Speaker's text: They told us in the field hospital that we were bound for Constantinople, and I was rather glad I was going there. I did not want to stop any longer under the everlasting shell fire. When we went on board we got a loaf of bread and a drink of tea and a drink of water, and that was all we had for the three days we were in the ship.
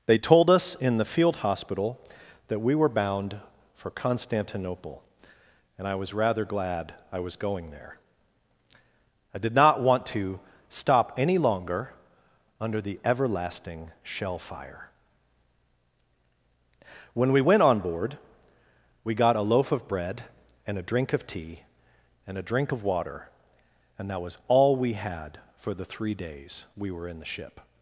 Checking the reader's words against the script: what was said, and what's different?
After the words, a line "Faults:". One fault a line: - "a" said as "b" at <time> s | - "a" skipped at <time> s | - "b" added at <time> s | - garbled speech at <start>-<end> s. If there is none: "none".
They told us in the field hospital that we were bound for Constantinople, and I was rather glad I was going there. I did not want to stop any longer under the everlasting shell fire. When we went on board we got a loaf of bread and a drink of tea and a drink of water, and that was all we had for the three days we were in the ship.
Faults:
none